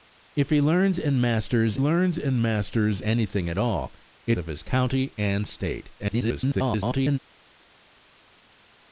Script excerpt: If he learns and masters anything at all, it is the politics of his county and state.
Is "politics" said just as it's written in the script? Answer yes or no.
no